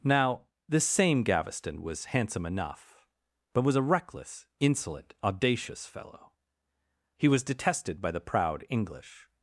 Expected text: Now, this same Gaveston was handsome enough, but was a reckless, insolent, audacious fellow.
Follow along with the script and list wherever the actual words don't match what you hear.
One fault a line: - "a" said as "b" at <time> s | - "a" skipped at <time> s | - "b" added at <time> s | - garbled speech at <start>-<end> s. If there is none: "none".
- "He was detested by the proud English" added at 7.2 s